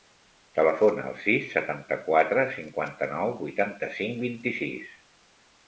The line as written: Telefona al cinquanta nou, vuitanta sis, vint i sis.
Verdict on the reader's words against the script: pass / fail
fail